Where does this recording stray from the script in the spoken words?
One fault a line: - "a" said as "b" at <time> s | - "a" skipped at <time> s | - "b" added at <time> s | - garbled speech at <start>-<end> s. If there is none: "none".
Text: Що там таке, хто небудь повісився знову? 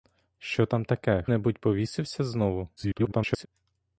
- "хто" skipped at 1.2 s
- garbled speech at 2.8-3.5 s